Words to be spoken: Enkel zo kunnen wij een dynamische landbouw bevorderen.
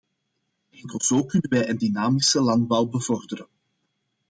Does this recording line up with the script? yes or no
yes